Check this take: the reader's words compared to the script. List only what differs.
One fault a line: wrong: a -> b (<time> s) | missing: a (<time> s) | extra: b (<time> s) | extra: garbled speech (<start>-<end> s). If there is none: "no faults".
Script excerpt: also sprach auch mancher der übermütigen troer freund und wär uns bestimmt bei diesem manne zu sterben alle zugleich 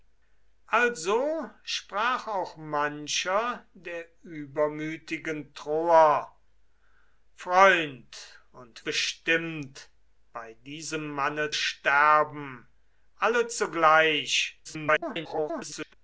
missing: wär uns (8.8 s)
missing: zu (11.5 s)
extra: garbled speech (14.6-15.9 s)